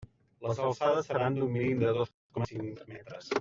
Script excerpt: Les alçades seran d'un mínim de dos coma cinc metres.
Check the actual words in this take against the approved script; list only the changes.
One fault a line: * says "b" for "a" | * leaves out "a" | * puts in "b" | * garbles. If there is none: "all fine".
all fine